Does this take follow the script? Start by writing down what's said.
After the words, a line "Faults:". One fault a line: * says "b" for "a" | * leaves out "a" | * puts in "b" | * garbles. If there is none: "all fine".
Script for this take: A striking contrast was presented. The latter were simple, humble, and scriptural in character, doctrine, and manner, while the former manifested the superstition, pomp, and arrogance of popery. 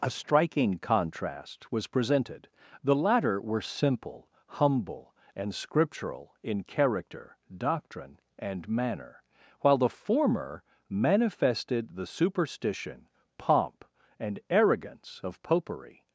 A striking contrast was presented. The latter were simple, humble, and scriptural in character, doctrine, and manner, while the former manifested the superstition, pomp, and arrogance of popery.
Faults:
all fine